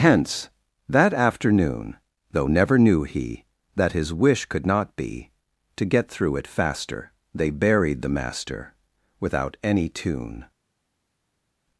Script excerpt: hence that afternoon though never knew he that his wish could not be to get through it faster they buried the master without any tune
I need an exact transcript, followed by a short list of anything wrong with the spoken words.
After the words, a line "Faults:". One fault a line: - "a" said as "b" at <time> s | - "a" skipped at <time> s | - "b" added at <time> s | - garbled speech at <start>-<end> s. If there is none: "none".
hence that afternoon though never knew he that his wish could not be to get through it faster they buried the master without any tune
Faults:
none